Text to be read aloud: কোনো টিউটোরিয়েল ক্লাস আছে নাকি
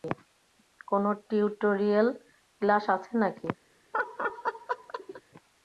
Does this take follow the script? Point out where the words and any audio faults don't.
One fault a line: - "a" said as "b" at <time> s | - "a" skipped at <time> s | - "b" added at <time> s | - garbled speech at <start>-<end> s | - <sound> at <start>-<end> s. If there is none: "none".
- laugh at 3.9-5.2 s